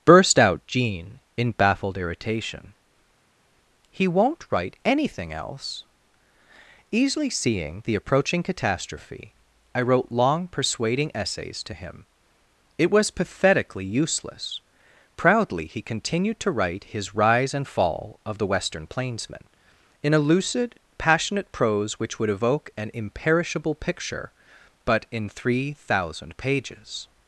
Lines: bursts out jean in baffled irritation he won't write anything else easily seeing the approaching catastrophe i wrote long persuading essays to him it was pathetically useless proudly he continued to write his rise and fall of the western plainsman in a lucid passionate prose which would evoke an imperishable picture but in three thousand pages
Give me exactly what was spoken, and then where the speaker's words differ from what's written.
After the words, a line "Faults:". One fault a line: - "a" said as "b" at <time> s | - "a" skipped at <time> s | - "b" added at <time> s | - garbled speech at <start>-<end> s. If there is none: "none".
burst out jean in baffled irritation he won't write anything else easily seeing the approaching catastrophe i wrote long persuading essays to him it was pathetically useless proudly he continued to write his rise and fall of the western plainsman in a lucid passionate prose which would evoke an imperishable picture but in three thousand pages
Faults:
- "bursts" said as "burst" at 0.0 s